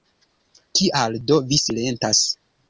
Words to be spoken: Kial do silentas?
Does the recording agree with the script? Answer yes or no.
no